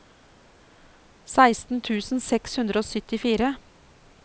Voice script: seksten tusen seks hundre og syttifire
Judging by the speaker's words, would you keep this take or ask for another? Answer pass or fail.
pass